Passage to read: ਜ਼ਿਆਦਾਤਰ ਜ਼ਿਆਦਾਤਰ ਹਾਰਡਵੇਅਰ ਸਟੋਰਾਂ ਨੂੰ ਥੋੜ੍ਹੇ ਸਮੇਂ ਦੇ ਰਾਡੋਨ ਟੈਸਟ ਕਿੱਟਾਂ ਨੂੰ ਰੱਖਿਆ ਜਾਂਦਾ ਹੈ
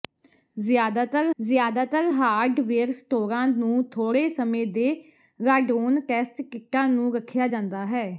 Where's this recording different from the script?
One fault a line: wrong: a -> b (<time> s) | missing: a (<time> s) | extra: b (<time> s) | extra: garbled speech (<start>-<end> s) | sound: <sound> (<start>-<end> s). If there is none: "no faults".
no faults